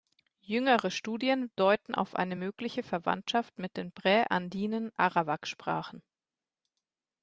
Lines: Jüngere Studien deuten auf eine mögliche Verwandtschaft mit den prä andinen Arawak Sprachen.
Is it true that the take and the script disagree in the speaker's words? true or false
false